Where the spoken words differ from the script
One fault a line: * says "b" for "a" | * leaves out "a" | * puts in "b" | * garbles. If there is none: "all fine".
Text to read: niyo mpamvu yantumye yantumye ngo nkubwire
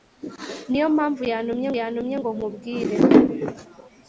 all fine